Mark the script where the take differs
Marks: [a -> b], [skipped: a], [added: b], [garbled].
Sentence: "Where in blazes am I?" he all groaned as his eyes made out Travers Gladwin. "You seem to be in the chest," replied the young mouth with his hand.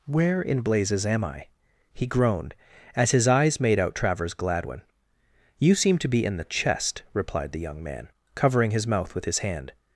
"Where in blazes am I?" he [skipped: all] groaned as his eyes made out Travers Gladwin. "You seem to be in the chest," replied the young [added: man covering his] mouth with his hand.